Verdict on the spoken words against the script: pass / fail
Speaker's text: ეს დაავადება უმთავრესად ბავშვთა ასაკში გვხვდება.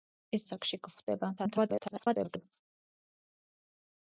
fail